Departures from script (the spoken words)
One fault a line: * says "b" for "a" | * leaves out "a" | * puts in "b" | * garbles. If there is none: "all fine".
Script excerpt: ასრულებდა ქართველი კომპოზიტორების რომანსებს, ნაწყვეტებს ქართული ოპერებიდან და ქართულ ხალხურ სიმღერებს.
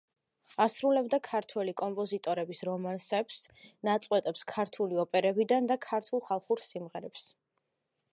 all fine